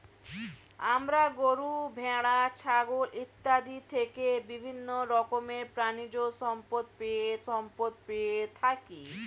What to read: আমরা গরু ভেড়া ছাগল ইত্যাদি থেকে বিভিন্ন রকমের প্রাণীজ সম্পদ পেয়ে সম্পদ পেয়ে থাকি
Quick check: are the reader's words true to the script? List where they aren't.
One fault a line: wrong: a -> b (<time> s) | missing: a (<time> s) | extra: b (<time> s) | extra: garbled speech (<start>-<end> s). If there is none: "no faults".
no faults